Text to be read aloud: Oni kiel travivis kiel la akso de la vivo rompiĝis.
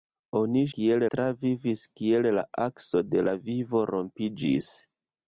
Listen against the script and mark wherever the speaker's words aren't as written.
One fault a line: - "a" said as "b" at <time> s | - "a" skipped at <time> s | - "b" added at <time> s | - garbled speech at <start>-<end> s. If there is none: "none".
none